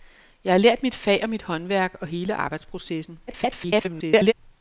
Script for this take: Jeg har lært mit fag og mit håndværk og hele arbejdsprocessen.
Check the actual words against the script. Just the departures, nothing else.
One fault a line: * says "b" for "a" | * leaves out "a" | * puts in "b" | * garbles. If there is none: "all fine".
* garbles